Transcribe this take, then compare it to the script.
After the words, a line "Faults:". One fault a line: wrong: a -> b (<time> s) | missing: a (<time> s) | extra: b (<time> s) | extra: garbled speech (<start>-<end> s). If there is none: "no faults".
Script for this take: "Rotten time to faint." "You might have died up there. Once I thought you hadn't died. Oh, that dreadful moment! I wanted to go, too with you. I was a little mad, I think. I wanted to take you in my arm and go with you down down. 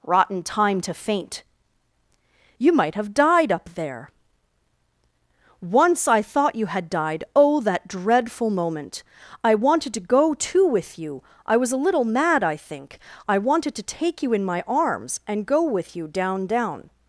"Rotten time to faint." "You might have died up there. Once I thought you had died. Oh, that dreadful moment! I wanted to go, too with you. I was a little mad, I think. I wanted to take you in my arms and go with you down down.
Faults:
wrong: hadn't -> had (6.7 s)
wrong: arm -> arms (14.7 s)